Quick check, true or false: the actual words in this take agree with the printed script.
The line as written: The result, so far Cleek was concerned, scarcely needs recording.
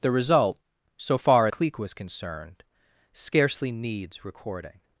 true